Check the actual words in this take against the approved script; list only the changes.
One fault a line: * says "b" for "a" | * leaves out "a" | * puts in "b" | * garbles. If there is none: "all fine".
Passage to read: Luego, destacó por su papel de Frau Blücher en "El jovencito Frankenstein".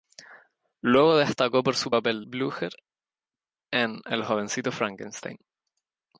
* leaves out "de Frau"